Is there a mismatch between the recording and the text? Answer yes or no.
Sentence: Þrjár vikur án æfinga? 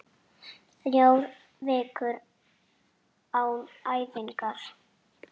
no